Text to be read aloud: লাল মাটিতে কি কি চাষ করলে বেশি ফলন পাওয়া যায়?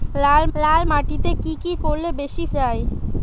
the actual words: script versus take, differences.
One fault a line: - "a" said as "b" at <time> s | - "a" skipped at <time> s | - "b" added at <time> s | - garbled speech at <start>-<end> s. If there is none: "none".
- "লাল" added at 0.6 s
- "চাষ" skipped at 1.7 s
- "ফলন পাওয়া" skipped at 2.4 s